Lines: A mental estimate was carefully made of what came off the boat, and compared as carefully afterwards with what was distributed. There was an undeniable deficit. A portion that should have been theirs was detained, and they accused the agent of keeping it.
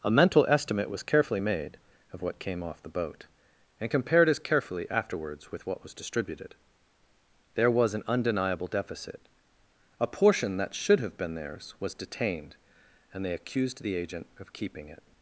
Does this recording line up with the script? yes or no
yes